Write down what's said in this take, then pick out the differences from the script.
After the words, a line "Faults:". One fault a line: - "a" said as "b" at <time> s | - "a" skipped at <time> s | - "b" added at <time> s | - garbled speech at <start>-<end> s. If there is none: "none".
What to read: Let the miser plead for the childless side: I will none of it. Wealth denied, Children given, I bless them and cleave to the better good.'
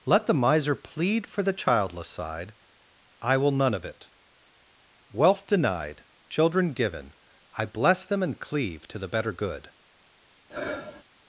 Let the miser plead for the childless side: I will none of it. Wealth denied, Children given, I bless them and cleave to the better good.'
Faults:
none